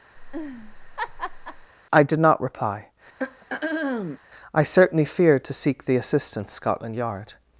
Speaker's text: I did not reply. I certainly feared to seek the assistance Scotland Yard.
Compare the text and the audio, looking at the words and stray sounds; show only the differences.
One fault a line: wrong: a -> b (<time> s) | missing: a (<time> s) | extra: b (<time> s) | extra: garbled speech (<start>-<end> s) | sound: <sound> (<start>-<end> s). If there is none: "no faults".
sound: laugh (0.2-1.7 s)
sound: throat clearing (3.2-4.2 s)